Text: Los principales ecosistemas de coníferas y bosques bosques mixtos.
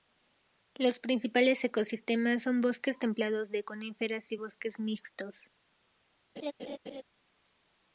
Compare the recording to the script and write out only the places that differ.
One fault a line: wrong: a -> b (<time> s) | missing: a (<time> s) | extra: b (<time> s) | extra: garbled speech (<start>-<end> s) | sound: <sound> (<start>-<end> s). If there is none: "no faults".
extra: son bosques templados (2.4 s)
missing: bosques (4.8 s)
sound: laugh (6.4-7.0 s)